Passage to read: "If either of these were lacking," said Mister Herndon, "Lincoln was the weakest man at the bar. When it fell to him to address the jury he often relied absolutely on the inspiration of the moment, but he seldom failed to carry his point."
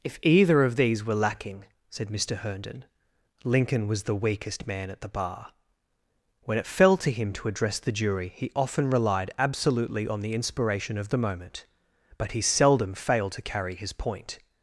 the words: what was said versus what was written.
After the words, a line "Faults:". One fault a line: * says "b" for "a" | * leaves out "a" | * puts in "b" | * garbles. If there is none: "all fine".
"If either of these were lacking," said Mister Herndon, "Lincoln was the weakest man at the bar. When it fell to him to address the jury he often relied absolutely on the inspiration of the moment, but he seldom failed to carry his point."
Faults:
all fine